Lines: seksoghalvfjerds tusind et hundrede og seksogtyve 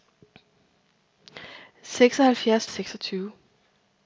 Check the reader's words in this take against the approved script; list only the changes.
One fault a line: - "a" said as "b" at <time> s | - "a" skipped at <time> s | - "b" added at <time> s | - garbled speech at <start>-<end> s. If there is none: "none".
- "tusind et hundrede" skipped at 2.7 s